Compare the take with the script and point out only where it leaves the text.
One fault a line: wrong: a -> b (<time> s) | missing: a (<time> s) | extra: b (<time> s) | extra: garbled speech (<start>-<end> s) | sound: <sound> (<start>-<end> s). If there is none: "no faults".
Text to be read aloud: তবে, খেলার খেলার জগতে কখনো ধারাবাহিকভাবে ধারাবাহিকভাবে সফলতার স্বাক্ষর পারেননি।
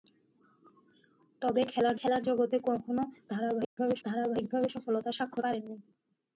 sound: dropout (3.6-3.8 s)